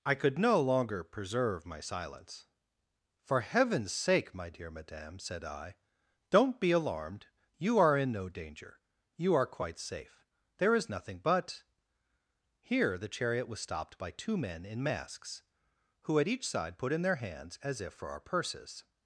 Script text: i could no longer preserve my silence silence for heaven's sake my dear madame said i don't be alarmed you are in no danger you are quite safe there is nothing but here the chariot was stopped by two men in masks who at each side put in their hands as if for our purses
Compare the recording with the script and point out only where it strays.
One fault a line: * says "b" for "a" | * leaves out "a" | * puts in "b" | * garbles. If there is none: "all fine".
* leaves out "silence"